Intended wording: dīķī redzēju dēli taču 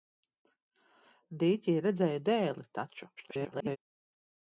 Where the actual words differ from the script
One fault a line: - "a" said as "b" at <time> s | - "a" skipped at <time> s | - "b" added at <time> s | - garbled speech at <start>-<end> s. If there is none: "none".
- garbled speech at 3.2-3.8 s